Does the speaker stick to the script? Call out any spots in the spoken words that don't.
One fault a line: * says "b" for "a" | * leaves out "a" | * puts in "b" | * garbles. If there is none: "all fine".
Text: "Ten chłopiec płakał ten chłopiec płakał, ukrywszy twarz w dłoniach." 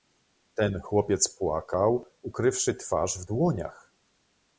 * leaves out "ten chłopiec płakał"